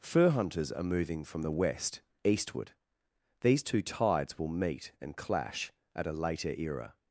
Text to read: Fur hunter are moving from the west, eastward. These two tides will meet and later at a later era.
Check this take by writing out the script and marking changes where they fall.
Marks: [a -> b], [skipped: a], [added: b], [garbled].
Fur [hunter -> hunters] are moving from the west, eastward. These two tides will meet and [later -> clash] at a later era.